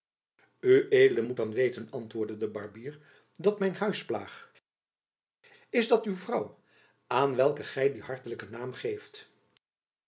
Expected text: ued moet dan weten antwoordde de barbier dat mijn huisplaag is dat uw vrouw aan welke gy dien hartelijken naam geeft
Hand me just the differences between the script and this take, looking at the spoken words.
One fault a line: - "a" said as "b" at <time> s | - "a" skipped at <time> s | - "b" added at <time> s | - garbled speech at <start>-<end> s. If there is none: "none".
none